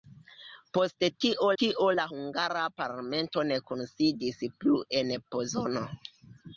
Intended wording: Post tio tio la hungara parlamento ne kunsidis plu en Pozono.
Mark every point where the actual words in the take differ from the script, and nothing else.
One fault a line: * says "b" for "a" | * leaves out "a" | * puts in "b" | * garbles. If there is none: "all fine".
all fine